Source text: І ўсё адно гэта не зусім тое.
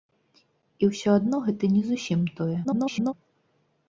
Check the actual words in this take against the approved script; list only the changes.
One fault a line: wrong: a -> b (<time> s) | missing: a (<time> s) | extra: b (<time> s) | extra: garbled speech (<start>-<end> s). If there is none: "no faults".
extra: garbled speech (2.6-3.1 s)